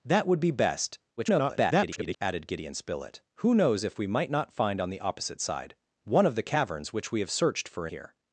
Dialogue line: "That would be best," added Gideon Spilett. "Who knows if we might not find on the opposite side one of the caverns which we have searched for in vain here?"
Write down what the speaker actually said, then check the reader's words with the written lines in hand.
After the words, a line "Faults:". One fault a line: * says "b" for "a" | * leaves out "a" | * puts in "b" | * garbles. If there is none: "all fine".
"That would be best," [garbled] added Gideon Spilett. "Who knows if we might not find on the opposite side one of the caverns which we have searched for here?"
Faults:
* garbles
* leaves out "in vain"